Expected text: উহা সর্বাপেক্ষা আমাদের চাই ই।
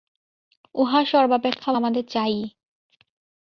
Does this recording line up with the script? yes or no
yes